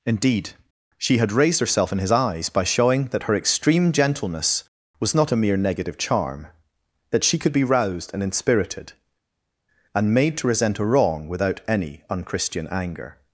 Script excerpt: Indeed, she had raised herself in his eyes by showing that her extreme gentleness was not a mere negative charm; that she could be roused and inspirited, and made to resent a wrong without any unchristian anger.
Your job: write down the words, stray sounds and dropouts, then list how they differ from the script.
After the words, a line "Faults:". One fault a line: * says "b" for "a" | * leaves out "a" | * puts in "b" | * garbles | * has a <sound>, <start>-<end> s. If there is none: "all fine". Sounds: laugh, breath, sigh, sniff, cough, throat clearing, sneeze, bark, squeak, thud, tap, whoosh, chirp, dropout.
Indeed, she had raised herself in his eyes by showing that her extreme gentleness was not a mere negative charm; that she could be roused and inspirited, and made to resent a wrong without any unchristian anger.
Faults:
all fine